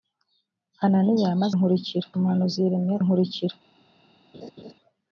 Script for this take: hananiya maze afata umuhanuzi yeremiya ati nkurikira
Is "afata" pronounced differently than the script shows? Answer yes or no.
yes